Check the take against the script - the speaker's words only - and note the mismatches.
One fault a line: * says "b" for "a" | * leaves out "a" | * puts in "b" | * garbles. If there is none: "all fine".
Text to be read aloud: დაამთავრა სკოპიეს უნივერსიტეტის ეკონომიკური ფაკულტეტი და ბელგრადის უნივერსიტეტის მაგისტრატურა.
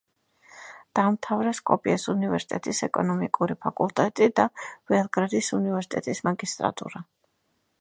all fine